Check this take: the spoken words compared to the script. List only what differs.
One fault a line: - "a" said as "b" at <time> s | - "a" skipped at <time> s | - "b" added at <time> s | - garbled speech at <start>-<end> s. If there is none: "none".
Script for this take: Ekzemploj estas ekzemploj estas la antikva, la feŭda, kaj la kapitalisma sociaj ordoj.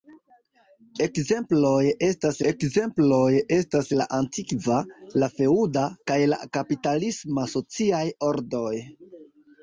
none